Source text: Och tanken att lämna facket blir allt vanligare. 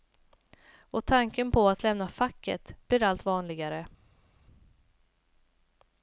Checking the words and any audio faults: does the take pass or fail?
fail